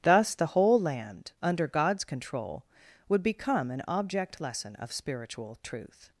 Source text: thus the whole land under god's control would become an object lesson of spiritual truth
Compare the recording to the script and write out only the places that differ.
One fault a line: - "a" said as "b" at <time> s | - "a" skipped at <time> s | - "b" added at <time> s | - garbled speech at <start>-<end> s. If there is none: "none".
none